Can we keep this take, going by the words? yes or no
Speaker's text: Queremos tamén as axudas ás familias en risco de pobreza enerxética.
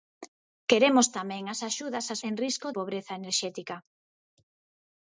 no